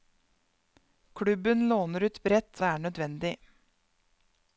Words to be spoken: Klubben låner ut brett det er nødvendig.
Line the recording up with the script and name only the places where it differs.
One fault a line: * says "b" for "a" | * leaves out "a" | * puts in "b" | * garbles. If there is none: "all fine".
all fine